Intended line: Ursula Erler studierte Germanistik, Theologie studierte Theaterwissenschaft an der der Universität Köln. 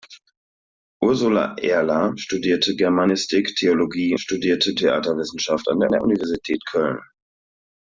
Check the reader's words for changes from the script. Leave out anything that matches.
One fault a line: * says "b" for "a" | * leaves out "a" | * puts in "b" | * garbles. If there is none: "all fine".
all fine